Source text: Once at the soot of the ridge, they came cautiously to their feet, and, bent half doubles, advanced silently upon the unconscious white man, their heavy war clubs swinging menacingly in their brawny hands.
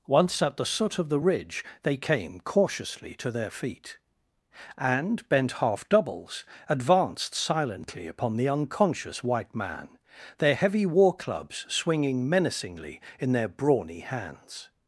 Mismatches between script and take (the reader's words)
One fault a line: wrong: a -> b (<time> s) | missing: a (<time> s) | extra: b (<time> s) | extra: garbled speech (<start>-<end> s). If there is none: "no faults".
no faults